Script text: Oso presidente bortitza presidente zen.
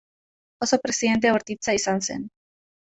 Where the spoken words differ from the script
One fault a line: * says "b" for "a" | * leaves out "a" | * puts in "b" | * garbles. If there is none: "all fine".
* says "izan" for "presidente"